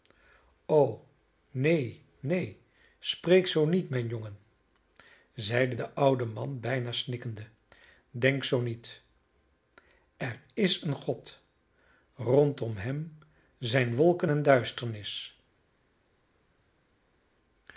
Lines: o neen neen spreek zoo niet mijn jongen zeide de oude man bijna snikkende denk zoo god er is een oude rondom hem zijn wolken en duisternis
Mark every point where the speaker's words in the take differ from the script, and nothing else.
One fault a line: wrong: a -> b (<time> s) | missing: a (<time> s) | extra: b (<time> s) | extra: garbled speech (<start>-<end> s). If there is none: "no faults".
wrong: god -> niet (8.6 s)
wrong: oude -> god (10.9 s)